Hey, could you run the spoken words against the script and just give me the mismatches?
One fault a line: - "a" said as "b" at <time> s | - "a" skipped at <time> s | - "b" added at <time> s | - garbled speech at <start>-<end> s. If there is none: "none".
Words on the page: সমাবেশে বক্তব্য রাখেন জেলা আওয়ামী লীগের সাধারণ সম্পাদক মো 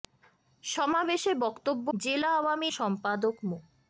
- "রাখেন" skipped at 1.9 s
- "লীগের সাধারণ" skipped at 2.7 s